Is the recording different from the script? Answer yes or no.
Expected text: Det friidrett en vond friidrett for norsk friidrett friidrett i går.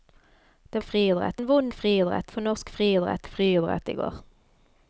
no